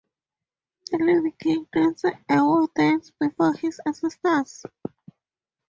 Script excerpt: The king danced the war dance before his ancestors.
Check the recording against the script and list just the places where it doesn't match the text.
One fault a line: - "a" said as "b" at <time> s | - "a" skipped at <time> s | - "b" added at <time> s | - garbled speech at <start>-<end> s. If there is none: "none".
- "living" added at 1.0 s
- "the" said as "a" at 2.0 s